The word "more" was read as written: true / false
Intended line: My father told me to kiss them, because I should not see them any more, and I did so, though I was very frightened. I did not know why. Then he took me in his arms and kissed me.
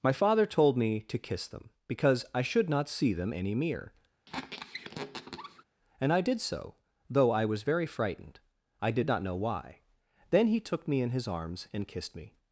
false